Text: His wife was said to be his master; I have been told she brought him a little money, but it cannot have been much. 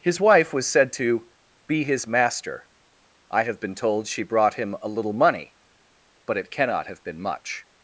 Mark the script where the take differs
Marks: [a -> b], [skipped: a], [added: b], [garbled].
His wife was said to be his master; I have been told she brought him a little money, but it cannot have been much.